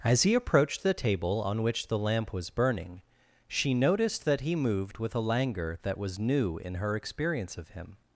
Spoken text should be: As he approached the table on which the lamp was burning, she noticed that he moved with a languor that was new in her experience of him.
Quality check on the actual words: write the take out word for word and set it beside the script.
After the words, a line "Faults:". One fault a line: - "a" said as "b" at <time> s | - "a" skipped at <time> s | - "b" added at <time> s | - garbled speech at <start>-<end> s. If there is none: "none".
As he approached the table on which the lamp was burning, she noticed that he moved with a languor that was new in her experience of him.
Faults:
none